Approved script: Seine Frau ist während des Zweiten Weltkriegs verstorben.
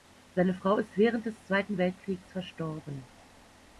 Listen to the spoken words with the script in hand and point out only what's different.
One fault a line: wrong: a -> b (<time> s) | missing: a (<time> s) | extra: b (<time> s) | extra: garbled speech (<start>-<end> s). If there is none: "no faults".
no faults